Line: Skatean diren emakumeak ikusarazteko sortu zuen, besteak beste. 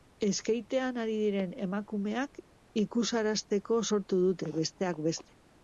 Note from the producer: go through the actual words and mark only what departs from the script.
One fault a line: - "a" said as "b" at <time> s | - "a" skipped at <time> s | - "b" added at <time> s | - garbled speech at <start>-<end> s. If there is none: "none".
- "ari" added at 1.0 s
- "zuen" said as "dute" at 4.3 s